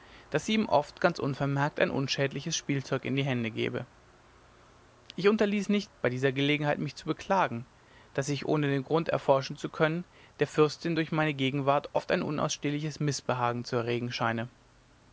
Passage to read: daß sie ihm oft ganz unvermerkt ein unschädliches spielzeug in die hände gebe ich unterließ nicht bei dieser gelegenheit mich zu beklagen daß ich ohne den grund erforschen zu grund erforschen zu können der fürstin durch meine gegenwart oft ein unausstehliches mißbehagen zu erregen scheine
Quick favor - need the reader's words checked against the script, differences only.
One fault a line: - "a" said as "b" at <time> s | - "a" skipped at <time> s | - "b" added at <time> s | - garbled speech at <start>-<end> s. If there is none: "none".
- "grund erforschen zu" skipped at 9.7 s